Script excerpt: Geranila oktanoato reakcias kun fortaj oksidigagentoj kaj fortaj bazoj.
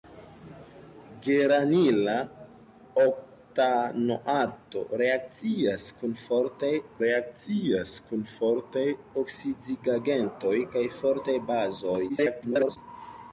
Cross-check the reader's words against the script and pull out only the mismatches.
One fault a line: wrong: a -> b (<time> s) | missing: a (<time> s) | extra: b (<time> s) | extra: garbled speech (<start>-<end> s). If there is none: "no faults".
extra: reakcias kun fortaj (7.0 s)
extra: garbled speech (12.1-12.8 s)